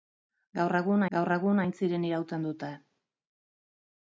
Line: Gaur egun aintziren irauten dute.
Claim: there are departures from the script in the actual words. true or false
true